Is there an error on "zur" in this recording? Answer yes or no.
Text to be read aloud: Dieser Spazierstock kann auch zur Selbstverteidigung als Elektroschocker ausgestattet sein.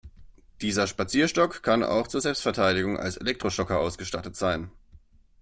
no